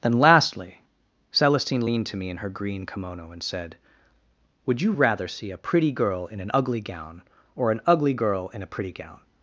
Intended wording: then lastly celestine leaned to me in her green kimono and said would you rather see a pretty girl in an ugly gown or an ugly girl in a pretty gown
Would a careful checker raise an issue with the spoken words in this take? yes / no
no